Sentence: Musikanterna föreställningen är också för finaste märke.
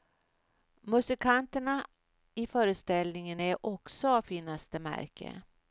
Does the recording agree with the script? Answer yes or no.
no